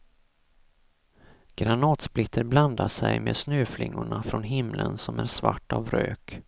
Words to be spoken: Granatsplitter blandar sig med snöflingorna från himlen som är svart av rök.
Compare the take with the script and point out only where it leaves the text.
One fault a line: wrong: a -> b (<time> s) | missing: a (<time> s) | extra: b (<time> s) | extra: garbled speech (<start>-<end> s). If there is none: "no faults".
no faults